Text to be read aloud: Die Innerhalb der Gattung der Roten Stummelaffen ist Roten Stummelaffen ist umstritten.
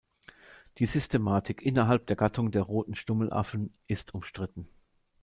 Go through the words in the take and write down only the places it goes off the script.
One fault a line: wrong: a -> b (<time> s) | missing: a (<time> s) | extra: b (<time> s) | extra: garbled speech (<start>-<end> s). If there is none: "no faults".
extra: Systematik (0.9 s)
missing: Roten Stummelaffen ist (4.2 s)